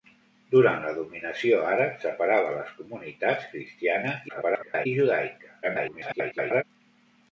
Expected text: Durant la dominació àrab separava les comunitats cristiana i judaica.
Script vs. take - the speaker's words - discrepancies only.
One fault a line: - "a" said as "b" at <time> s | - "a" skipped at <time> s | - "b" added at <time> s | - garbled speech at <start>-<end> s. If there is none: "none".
- garbled speech at 4.3-4.9 s
- garbled speech at 5.6-6.6 s